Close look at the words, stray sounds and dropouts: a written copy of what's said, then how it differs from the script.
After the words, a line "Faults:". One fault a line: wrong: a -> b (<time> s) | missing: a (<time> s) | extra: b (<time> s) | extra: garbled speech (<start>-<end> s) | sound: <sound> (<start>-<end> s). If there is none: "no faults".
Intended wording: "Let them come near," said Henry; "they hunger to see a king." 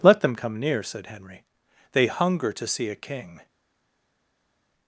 "Let them come near," said Henry; "they hunger to see a king."
Faults:
no faults